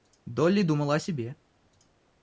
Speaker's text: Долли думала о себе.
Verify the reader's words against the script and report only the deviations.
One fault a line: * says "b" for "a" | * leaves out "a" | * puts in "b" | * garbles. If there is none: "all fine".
all fine